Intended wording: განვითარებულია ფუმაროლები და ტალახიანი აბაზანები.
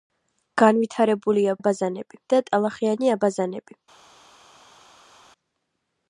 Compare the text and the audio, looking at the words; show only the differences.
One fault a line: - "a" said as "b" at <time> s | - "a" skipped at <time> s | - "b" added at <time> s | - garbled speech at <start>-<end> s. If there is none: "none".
- "ფუმაროლები" said as "აბაზანები" at 1.6 s